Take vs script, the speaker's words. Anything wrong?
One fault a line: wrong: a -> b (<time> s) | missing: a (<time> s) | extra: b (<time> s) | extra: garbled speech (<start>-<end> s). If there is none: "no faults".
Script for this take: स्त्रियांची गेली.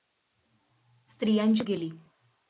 no faults